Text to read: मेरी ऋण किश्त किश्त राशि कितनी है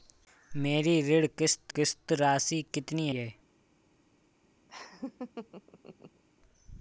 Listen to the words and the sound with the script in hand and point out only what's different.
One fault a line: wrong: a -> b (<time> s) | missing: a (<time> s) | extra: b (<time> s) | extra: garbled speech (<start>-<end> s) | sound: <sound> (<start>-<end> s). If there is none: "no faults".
sound: laugh (4.7-6.2 s)